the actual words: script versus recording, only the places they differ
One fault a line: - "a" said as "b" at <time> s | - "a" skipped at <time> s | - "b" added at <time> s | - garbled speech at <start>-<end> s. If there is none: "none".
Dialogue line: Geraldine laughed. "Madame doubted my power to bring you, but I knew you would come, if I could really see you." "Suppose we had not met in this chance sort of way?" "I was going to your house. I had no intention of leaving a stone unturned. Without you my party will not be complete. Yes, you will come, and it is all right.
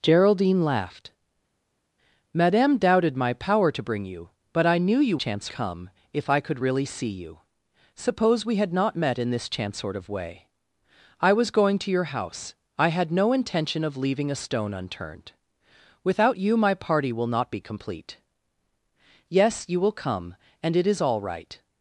- "would" said as "chance" at 5.2 s